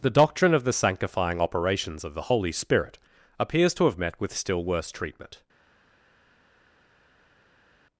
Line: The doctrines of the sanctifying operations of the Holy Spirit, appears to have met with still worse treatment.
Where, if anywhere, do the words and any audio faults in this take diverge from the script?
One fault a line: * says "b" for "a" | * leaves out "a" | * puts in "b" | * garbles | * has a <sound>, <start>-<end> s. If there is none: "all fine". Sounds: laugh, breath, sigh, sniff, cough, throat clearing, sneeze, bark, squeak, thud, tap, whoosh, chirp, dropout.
* says "doctrine" for "doctrines"